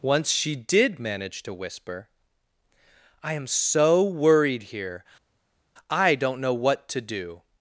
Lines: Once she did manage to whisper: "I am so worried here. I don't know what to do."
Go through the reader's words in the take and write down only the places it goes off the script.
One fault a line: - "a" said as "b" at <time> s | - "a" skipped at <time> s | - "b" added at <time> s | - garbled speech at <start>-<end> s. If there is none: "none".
none